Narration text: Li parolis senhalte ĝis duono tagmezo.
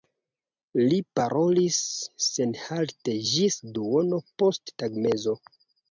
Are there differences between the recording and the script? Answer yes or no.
yes